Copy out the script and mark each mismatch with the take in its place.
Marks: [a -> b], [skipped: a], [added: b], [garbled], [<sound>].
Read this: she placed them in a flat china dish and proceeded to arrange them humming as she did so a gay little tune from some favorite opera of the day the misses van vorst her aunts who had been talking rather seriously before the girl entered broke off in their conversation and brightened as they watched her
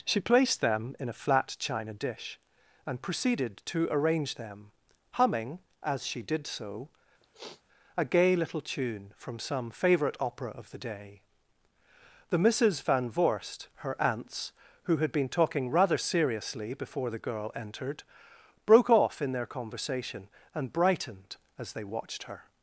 she placed them in a flat china dish and proceeded to arrange them humming as she did so [sniff] a gay little tune from some favorite opera of the day the misses van vorst her aunts who had been talking rather seriously before the girl entered broke off in their conversation and brightened as they watched her